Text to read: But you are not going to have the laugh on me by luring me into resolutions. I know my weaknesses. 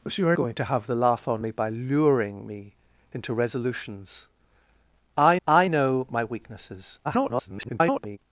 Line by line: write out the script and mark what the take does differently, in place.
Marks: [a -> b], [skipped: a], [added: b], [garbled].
But you are [skipped: not] going to have the laugh on me by luring me into resolutions. I [added: I] know my weaknesses. [garbled]